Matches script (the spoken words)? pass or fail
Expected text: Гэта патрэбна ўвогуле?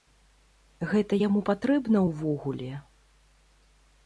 fail